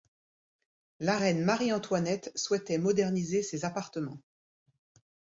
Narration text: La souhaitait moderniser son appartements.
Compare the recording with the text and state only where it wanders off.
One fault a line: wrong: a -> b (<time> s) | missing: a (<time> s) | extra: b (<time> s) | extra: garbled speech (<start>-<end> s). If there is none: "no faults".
extra: reine Marie Antoinette (1.2 s)
wrong: son -> ses (3.4 s)